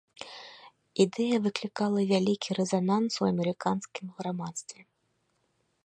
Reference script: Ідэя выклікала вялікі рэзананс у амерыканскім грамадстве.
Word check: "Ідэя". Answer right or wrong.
right